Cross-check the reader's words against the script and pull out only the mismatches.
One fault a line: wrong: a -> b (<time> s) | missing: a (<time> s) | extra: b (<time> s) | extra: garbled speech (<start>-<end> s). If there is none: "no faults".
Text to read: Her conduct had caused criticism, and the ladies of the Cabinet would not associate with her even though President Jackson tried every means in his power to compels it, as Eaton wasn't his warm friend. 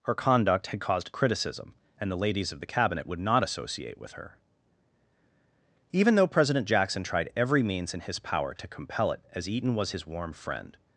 wrong: compels -> compel (8.7 s)
wrong: wasn't -> was (9.7 s)